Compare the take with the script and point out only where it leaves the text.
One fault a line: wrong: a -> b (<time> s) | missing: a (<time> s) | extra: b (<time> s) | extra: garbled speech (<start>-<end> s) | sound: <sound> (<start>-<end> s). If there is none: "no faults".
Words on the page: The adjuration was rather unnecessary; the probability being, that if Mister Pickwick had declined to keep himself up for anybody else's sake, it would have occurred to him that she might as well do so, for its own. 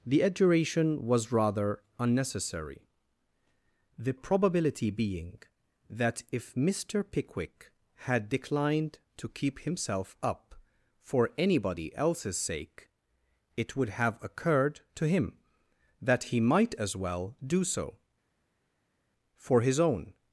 wrong: she -> he (16.2 s)
wrong: its -> his (19.6 s)